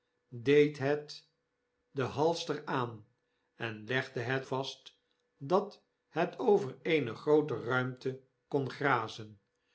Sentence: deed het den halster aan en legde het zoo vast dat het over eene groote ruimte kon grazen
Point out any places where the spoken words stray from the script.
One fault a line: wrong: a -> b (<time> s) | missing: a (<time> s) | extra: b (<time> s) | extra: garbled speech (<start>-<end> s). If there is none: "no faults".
missing: zoo (4.5 s)